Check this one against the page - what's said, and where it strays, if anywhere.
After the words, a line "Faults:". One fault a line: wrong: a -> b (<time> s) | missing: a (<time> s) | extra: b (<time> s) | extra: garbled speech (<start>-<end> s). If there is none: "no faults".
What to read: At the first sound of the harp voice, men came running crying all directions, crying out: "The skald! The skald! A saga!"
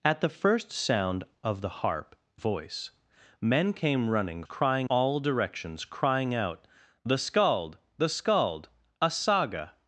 At the first sound of the harp voice, men came running crying all directions, crying out: "The skald! The skald! A saga!"
Faults:
no faults